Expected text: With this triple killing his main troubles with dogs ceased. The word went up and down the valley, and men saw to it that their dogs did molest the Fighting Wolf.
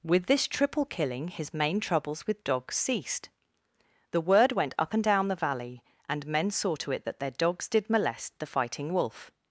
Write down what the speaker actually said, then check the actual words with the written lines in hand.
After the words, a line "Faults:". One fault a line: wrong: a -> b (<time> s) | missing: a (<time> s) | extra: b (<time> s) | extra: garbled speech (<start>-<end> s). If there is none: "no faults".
With this triple killing his main troubles with dogs ceased. The word went up and down the valley, and men saw to it that their dogs did molest the Fighting Wolf.
Faults:
no faults